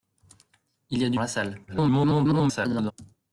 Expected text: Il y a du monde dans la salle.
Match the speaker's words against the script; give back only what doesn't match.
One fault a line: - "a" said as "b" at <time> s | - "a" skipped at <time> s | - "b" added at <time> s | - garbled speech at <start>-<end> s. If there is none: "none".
- "monde dans" skipped at 1.2 s
- garbled speech at 1.7-2.9 s